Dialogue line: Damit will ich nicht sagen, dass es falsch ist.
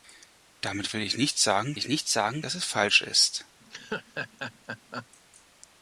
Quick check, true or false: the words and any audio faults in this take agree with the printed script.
false